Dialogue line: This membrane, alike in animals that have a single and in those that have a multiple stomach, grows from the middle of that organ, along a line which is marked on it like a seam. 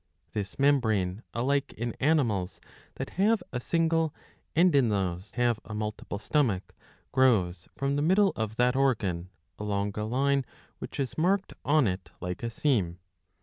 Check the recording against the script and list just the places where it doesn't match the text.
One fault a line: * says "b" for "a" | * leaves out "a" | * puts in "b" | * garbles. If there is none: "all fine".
* leaves out "that"